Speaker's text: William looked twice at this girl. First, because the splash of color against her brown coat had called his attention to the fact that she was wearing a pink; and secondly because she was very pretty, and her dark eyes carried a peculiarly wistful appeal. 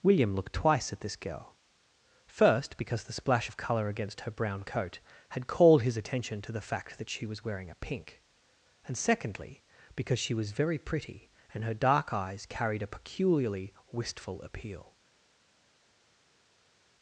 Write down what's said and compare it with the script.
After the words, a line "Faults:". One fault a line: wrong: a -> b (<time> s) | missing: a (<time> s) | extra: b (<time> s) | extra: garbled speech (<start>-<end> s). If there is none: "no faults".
William looked twice at this girl. First, because the splash of color against her brown coat had called his attention to the fact that she was wearing a pink; and secondly because she was very pretty, and her dark eyes carried a peculiarly wistful appeal.
Faults:
no faults